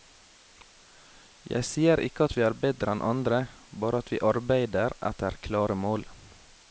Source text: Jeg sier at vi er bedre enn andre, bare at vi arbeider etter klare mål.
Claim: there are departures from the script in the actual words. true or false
true